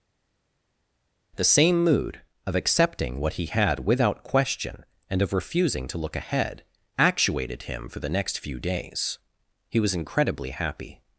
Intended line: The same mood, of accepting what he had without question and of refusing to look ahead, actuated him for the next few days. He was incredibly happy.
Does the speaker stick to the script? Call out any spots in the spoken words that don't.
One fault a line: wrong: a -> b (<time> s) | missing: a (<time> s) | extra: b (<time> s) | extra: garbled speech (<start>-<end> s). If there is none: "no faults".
no faults